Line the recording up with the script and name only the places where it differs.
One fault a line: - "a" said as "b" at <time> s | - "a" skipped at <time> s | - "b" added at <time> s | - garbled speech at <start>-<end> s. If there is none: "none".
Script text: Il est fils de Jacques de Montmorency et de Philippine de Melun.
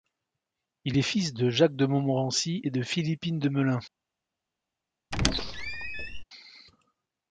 none